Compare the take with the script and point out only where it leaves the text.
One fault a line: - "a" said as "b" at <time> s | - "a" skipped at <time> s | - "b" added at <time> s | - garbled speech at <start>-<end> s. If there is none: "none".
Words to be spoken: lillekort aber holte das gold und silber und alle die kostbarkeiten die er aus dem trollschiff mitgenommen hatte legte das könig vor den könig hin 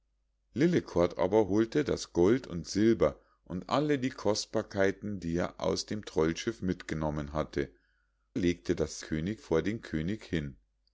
none